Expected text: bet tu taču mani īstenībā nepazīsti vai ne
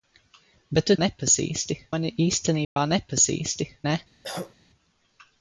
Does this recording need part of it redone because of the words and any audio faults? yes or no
yes